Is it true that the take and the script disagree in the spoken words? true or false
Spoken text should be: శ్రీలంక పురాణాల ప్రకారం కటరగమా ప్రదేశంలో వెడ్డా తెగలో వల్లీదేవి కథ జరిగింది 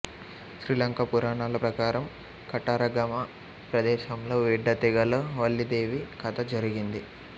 false